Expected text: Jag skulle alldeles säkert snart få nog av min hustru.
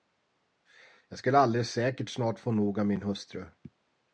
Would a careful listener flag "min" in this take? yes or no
no